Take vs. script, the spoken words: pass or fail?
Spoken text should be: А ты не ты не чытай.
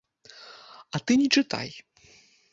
fail